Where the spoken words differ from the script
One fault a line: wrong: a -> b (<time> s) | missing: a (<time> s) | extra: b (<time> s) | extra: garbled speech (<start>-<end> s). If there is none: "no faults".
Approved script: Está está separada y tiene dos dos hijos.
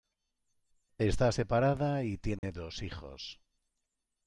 missing: está (1.3 s)
missing: dos (2.8 s)